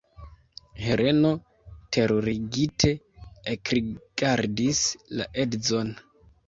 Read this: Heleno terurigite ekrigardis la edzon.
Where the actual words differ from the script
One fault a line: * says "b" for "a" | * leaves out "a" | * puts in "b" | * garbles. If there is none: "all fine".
all fine